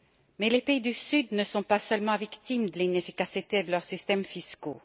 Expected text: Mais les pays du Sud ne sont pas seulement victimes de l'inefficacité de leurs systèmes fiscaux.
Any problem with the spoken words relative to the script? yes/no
no